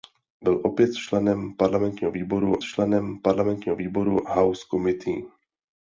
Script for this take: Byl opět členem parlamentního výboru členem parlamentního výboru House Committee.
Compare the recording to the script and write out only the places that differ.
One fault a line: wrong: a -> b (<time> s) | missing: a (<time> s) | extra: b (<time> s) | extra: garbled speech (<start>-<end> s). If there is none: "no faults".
no faults